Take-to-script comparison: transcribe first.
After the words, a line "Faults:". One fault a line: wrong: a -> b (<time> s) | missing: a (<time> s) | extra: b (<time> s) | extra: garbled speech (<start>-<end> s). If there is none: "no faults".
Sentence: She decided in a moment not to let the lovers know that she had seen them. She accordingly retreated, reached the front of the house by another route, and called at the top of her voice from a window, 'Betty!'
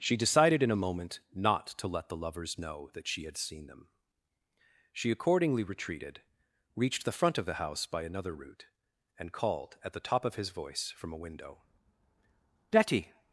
She decided in a moment not to let the lovers know that she had seen them. She accordingly retreated, reached the front of the house by another route, and called at the top of his voice from a window, 'Betty!'
Faults:
wrong: her -> his (10.3 s)